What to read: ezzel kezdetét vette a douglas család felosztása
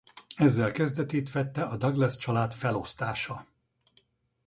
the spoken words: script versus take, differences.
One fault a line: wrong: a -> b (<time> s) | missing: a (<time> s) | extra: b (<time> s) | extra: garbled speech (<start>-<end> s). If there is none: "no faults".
no faults